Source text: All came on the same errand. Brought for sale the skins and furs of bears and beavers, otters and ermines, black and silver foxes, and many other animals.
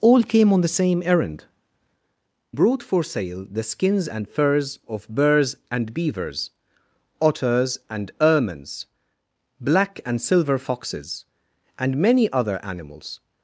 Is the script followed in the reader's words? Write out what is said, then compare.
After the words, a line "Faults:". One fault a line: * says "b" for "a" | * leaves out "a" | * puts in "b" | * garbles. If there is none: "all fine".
All came on the same errand. Brought for sale the skins and furs of bears and beavers, otters and ermines, black and silver foxes, and many other animals.
Faults:
all fine